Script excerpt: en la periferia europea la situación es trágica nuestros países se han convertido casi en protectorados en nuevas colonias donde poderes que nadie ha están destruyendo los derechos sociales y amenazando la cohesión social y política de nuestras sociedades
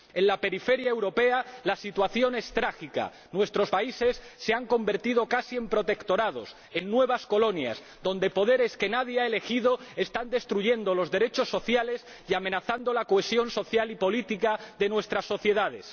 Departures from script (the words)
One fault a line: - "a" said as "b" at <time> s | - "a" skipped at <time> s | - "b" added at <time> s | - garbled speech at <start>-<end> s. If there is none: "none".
- "elegido" added at 9.3 s